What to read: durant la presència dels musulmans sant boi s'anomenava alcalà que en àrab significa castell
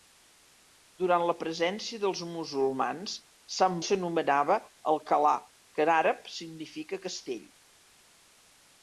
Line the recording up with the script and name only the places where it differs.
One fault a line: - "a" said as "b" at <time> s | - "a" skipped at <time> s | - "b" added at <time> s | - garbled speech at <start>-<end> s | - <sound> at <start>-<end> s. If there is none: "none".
- "boi" skipped at 3.8 s